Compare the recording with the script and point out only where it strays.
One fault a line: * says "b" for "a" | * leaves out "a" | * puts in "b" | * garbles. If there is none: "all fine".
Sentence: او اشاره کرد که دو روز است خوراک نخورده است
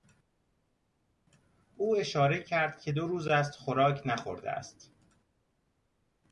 all fine